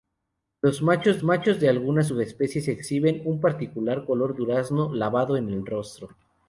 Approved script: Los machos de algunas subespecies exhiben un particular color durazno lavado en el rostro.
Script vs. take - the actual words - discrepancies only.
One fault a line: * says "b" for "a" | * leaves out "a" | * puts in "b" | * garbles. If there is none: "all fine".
* puts in "machos"